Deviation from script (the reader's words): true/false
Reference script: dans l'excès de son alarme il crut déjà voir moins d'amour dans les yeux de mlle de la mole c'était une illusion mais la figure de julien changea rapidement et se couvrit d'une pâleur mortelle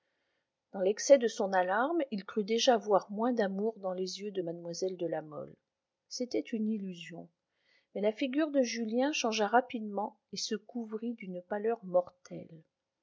false